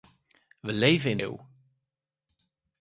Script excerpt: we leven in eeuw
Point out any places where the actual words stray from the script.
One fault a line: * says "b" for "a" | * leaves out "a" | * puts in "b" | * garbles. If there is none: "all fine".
all fine